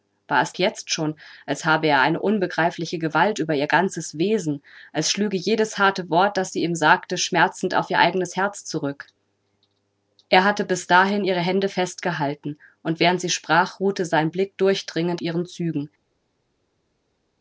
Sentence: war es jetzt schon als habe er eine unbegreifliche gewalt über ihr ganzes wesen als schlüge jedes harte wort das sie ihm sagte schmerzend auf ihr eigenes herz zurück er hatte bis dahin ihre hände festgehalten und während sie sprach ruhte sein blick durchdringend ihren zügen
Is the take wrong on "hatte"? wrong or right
right